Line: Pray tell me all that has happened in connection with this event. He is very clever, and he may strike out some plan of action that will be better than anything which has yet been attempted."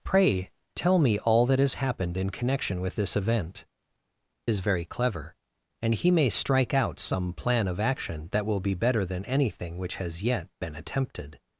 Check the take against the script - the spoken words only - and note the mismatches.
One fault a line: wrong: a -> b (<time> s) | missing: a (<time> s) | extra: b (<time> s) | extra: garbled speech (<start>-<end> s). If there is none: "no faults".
missing: He (3.6 s)